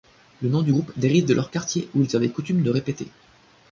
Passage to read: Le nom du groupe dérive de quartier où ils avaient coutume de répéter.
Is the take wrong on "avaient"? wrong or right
right